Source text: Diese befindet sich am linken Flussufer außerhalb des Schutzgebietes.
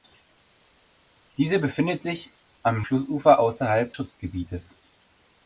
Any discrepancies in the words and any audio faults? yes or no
yes